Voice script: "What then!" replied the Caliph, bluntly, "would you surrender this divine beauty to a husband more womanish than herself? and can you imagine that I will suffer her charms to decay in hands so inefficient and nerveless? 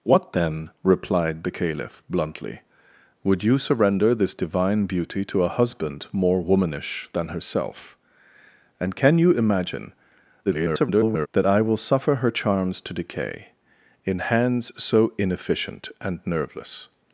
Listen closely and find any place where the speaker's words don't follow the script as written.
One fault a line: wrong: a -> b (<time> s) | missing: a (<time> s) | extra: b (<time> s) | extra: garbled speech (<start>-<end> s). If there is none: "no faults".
extra: garbled speech (10.4-11.3 s)